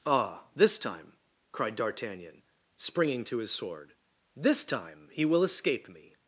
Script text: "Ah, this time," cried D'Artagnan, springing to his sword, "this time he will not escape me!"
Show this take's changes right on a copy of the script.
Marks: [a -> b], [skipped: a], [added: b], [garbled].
"Ah, this time," cried D'Artagnan, springing to his sword, "this time he will [skipped: not] escape me!"